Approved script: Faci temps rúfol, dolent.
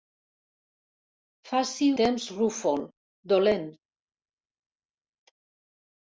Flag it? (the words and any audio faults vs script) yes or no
no